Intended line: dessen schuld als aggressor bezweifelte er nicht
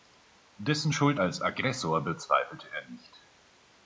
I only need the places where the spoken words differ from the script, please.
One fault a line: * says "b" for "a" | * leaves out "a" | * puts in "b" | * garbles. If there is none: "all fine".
all fine